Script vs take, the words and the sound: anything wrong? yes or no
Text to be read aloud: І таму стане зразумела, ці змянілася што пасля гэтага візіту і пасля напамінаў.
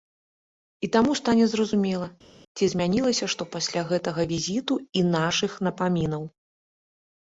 yes